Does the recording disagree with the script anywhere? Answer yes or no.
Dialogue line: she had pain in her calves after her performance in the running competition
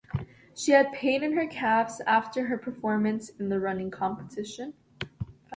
no